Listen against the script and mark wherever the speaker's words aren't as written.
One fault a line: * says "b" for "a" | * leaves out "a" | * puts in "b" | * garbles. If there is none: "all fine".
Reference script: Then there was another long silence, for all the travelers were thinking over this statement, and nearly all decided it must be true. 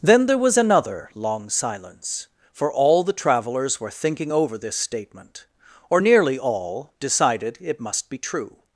* says "or" for "and"